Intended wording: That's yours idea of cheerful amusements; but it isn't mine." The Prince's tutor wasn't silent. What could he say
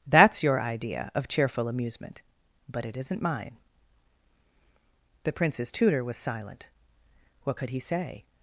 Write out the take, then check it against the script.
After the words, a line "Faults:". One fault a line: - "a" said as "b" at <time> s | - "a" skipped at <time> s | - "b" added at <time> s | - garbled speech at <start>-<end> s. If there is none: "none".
That's your idea of cheerful amusement; but it isn't mine." The Prince's tutor was silent. What could he say
Faults:
- "yours" said as "your" at 0.4 s
- "amusements" said as "amusement" at 1.7 s
- "wasn't" said as "was" at 6.0 s